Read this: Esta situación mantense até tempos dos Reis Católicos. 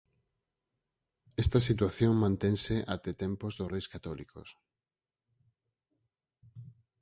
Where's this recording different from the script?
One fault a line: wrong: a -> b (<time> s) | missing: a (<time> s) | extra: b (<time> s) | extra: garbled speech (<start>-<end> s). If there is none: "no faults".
no faults